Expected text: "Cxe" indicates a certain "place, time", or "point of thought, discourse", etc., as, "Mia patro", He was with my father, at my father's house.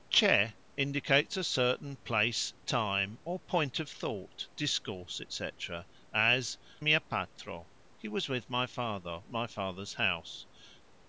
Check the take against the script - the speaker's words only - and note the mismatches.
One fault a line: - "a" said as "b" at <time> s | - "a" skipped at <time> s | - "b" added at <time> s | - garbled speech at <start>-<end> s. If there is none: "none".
none